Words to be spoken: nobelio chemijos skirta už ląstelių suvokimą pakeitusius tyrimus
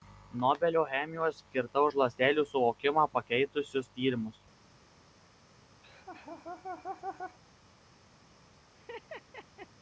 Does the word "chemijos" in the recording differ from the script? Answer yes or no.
no